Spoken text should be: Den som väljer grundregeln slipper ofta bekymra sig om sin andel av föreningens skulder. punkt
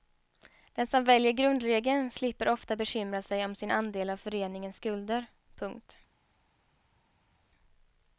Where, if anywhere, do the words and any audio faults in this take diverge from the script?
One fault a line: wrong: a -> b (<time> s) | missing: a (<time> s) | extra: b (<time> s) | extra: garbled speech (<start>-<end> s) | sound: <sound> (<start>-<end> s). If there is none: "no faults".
no faults